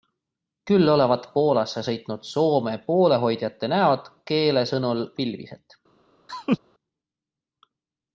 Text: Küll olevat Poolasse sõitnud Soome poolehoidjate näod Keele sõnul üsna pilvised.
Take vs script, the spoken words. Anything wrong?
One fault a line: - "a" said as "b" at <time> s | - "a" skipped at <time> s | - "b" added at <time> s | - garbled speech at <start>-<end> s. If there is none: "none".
- "üsna" skipped at 5.0 s